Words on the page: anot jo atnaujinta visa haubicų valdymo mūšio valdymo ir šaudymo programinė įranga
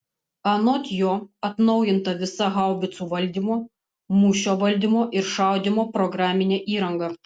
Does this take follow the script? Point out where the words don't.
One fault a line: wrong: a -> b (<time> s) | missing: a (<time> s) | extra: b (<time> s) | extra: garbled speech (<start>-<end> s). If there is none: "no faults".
no faults